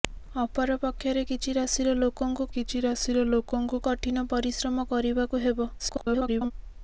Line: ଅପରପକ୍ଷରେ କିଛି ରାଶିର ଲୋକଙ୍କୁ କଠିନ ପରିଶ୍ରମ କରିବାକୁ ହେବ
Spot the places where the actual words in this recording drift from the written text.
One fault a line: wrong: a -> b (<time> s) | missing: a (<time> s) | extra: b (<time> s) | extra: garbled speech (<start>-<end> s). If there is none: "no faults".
extra: କିଛି ରାଶିର ଲୋକଙ୍କୁ (2.5 s)
extra: garbled speech (5.8-6.5 s)